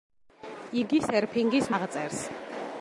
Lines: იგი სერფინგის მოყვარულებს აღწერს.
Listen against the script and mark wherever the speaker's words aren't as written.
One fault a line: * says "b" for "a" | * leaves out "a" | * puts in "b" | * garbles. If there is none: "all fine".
* leaves out "მოყვარულებს"